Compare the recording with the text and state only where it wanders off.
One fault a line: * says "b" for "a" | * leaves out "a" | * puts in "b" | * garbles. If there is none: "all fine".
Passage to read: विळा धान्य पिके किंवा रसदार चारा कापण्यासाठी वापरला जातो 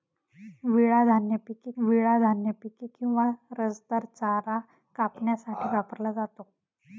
* puts in "विळा धान्य पिके"